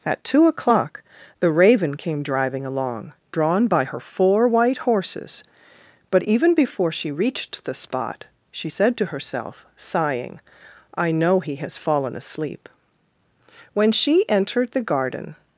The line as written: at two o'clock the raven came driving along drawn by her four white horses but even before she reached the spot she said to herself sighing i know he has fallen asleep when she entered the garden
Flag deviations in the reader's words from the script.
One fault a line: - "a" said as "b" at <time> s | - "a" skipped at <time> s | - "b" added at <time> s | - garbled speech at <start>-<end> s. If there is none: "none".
none